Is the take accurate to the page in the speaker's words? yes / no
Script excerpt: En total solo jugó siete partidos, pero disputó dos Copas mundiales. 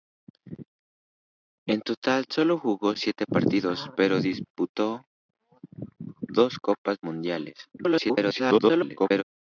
no